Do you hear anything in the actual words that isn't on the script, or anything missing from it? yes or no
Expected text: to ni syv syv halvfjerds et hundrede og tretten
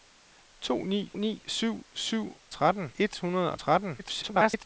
yes